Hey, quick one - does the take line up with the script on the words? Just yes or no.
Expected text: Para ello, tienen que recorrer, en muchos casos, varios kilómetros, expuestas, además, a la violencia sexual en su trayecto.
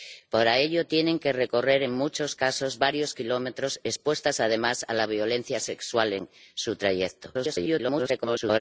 no